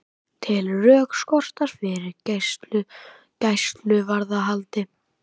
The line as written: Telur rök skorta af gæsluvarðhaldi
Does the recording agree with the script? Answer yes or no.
no